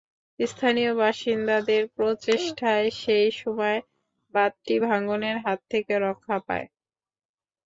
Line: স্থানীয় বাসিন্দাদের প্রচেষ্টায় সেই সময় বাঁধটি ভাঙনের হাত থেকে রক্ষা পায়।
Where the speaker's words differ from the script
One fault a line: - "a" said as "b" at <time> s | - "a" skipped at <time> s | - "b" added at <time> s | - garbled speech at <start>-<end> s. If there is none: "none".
none